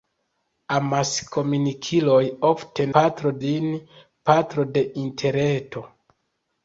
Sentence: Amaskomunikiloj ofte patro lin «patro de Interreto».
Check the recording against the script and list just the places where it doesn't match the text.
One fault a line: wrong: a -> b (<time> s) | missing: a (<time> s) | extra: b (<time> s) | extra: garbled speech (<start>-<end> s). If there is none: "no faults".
no faults